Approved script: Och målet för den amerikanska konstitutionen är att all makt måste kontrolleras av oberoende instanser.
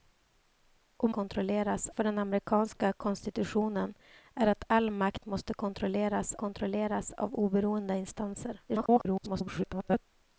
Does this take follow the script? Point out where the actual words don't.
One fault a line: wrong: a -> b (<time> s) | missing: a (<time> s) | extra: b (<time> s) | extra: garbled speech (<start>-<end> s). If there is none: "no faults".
wrong: målet -> kontrolleras (1.1 s)
extra: kontrolleras (6.3 s)
extra: garbled speech (8.7-10.0 s)